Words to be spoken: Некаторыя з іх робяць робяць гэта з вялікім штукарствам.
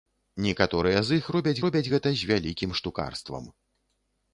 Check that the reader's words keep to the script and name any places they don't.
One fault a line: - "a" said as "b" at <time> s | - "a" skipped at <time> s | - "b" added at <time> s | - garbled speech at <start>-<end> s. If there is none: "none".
none